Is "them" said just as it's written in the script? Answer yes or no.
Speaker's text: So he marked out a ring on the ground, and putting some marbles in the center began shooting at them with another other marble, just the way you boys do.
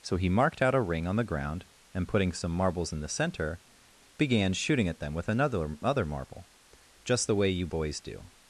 yes